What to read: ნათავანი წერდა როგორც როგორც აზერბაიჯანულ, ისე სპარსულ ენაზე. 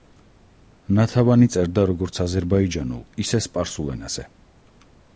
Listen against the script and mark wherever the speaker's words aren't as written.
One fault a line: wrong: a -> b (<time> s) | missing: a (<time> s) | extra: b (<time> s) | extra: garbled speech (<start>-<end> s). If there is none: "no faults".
missing: როგორც (2.2 s)